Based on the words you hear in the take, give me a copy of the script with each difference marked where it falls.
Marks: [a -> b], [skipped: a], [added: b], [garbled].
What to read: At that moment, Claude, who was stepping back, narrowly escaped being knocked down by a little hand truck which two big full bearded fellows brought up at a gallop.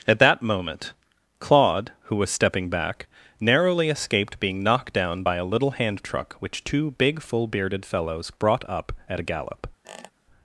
At that moment, Claude, who was stepping back, narrowly escaped being knocked down by a little hand truck which two big full bearded fellows brought up at a gallop.